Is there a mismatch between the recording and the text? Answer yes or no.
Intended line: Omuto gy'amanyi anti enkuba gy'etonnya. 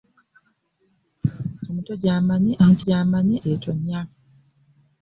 yes